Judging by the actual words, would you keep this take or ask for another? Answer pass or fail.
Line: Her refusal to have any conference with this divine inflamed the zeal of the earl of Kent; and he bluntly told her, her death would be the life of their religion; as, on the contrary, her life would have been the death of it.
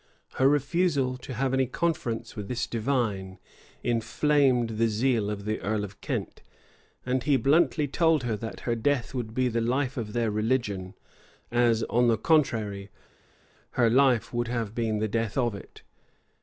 fail